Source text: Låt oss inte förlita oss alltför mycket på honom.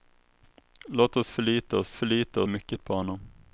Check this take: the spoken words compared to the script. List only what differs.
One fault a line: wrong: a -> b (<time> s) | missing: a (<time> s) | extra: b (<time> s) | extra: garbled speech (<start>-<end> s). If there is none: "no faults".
missing: inte (1.3 s)
wrong: alltför -> förlita (1.9 s)